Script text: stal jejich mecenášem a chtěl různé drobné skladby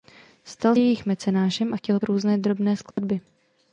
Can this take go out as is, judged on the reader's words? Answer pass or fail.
pass